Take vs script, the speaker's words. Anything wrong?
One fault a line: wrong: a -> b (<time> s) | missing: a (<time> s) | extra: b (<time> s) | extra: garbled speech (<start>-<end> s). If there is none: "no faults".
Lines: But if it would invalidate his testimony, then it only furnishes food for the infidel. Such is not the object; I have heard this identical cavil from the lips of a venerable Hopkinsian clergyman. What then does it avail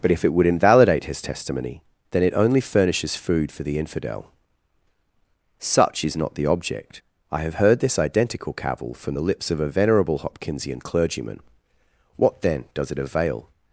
no faults